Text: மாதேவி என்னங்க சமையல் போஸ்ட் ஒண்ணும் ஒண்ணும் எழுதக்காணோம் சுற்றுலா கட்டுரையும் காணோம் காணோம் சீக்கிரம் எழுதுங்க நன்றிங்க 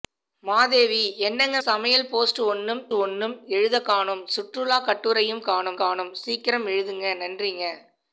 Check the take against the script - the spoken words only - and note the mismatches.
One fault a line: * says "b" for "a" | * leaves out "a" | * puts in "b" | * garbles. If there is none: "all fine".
all fine